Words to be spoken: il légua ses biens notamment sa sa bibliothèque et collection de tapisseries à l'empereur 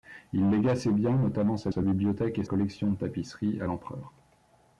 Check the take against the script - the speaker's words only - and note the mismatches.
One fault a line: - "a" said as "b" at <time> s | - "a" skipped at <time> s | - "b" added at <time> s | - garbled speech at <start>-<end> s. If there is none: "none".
none